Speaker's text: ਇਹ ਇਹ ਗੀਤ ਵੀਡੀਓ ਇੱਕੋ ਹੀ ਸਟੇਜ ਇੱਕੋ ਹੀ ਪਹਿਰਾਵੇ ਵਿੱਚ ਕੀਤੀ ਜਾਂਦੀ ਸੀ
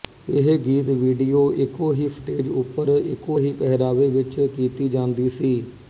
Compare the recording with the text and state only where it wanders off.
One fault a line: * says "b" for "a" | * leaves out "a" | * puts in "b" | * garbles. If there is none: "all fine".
* leaves out "ਇਹ"
* puts in "ਉੱਪਰ"